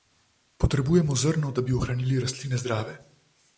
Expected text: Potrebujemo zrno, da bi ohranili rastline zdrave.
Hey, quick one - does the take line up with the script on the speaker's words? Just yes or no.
yes